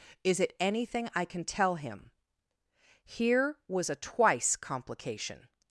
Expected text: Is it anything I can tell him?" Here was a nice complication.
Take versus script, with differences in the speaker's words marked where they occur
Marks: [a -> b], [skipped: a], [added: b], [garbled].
Is it anything I can tell him?" Here was a [nice -> twice] complication.